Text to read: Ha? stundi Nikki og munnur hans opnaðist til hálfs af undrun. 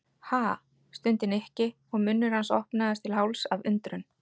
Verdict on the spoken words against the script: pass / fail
pass